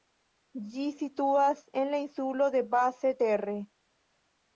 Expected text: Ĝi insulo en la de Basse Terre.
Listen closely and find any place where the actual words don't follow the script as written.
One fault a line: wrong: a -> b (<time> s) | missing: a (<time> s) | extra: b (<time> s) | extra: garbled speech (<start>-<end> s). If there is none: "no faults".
wrong: insulo -> situas (1.0 s)
extra: insulo (2.0 s)